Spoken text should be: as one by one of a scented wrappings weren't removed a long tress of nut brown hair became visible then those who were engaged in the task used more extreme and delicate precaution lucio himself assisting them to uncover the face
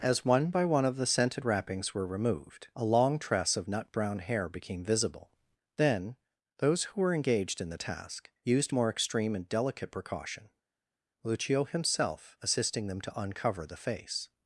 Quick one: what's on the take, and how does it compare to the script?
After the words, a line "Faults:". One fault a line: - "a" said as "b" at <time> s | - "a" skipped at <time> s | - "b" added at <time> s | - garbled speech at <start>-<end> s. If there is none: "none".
as one by one of the scented wrappings were removed a long tress of nut brown hair became visible then those who were engaged in the task used more extreme and delicate precaution lucio himself assisting them to uncover the face
Faults:
- "a" said as "the" at 0.9 s
- "weren't" said as "were" at 1.9 s